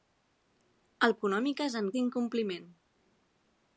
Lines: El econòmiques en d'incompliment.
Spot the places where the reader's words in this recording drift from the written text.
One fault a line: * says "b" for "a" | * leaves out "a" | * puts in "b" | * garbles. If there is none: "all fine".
all fine